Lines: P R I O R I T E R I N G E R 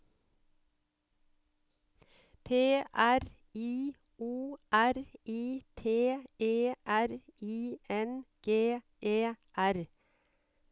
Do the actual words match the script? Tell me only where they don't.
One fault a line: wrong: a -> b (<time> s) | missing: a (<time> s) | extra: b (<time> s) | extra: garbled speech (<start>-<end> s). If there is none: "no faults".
no faults